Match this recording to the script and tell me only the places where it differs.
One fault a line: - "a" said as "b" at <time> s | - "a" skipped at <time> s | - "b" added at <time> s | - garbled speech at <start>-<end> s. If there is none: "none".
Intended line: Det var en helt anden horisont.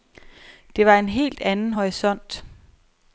none